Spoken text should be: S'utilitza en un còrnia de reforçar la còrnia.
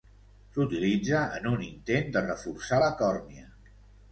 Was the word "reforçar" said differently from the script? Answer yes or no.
no